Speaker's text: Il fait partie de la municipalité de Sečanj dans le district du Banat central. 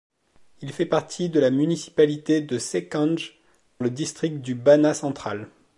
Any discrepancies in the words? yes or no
yes